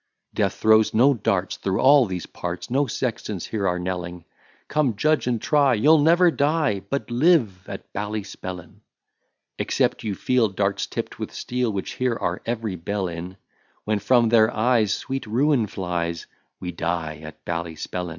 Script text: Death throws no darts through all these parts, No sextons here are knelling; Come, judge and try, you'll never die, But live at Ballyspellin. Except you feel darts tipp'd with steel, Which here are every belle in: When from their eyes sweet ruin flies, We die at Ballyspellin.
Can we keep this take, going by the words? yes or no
yes